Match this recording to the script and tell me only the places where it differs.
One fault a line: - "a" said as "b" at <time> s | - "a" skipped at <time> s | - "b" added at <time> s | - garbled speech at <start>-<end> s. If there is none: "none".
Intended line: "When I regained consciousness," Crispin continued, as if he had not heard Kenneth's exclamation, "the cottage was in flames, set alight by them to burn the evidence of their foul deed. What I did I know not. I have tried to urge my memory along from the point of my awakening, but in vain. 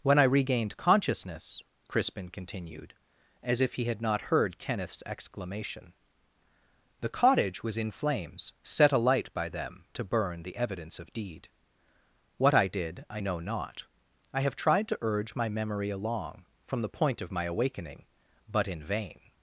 - "their foul" skipped at 11.1 s